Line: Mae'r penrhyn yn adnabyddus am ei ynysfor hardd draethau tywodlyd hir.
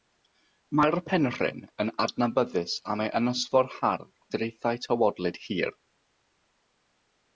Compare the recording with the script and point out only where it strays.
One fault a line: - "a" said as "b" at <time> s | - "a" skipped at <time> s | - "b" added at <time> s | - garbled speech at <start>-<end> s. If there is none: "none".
none